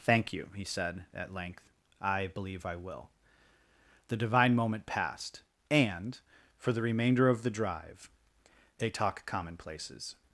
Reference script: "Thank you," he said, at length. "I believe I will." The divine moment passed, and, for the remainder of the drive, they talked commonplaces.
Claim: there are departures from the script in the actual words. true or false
true